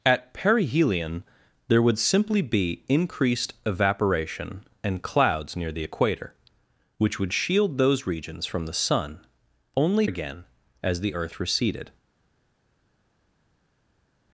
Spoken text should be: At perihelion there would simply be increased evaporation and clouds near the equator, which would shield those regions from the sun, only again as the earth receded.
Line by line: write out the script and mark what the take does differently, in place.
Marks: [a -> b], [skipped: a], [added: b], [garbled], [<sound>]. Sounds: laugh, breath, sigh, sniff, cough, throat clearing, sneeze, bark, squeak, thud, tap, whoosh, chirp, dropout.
At perihelion there would simply be increased evaporation and clouds near the equator, which would shield those regions from the sun, only again as the earth receded.